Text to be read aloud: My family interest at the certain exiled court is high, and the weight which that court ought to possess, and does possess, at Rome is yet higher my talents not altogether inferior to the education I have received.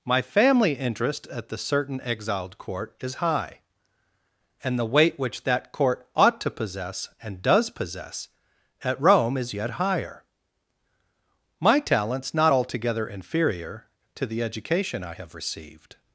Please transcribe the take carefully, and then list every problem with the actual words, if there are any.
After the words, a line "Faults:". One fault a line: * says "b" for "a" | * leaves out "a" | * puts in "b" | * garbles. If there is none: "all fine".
My family interest at the certain exiled court is high, and the weight which that court ought to possess, and does possess, at Rome is yet higher my talents not altogether inferior to the education I have received.
Faults:
all fine